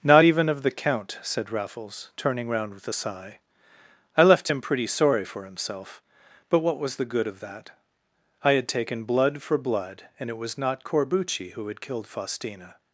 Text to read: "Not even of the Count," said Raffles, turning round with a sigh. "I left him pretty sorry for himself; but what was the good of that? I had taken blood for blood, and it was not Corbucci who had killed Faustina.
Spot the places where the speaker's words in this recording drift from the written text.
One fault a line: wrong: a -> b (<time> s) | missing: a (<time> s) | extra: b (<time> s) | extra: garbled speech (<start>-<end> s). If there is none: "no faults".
no faults